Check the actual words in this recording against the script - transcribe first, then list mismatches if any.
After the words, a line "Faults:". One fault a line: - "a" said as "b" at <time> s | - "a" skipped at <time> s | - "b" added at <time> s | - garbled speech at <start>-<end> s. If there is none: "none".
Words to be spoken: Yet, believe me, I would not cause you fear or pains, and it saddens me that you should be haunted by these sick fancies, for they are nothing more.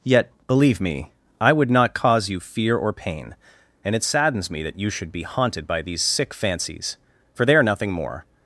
Yet, believe me, I would not cause you fear or pain, and it saddens me that you should be haunted by these sick fancies, for they are nothing more.
Faults:
- "pains" said as "pain" at 2.9 s